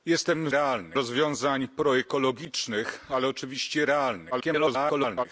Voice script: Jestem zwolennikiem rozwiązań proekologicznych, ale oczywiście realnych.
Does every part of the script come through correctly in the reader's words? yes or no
no